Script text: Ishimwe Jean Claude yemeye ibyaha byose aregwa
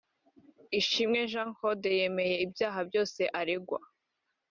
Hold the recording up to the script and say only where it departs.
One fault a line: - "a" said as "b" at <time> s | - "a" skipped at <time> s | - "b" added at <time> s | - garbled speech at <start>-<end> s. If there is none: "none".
none